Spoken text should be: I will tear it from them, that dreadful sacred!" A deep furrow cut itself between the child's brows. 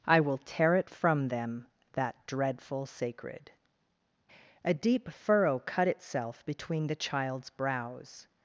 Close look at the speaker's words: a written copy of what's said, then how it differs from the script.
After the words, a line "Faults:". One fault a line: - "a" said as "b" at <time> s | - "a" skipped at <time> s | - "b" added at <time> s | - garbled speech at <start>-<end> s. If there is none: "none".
I will tear it from them, that dreadful sacred!" A deep furrow cut itself between the child's brows.
Faults:
none